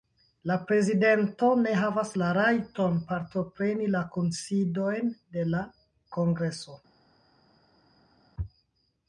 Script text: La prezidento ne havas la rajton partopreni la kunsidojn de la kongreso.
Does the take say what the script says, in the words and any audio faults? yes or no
yes